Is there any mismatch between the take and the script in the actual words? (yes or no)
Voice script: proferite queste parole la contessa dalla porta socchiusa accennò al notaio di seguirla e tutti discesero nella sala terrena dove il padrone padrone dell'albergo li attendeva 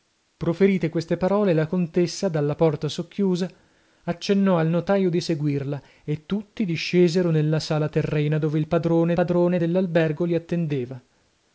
no